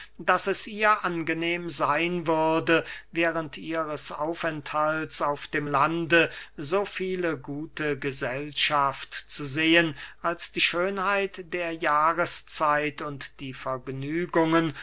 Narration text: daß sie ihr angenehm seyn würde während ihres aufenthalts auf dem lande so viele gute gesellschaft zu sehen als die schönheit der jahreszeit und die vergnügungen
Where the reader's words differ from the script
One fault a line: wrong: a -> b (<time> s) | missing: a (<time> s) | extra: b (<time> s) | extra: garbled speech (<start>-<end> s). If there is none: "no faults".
wrong: sie -> es (0.5 s)